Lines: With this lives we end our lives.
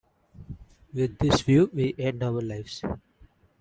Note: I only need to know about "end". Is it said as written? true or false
true